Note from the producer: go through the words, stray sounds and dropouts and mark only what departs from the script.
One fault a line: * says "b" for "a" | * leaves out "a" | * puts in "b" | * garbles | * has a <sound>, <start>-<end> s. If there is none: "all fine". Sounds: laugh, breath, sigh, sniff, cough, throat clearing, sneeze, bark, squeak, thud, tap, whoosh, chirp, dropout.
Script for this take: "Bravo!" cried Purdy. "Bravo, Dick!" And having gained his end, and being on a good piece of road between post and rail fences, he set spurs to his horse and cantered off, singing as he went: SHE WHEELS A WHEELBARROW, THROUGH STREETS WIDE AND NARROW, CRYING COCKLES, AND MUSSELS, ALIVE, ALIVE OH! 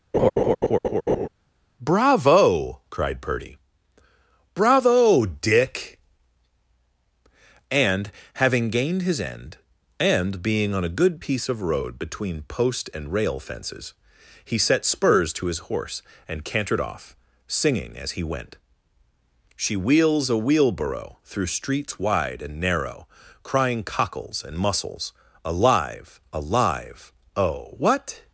* has a laugh, 0.1-1.3 s
* puts in "what"